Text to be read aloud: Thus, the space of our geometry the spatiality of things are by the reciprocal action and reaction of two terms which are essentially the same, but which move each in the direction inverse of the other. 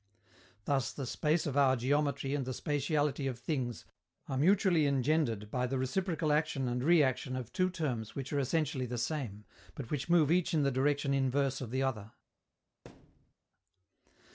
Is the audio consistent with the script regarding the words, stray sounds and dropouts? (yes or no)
no